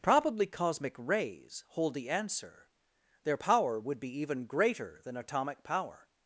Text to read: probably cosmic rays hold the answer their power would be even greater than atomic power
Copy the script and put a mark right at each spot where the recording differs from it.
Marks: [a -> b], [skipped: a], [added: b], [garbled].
probably cosmic rays hold the answer their power would be even greater than atomic power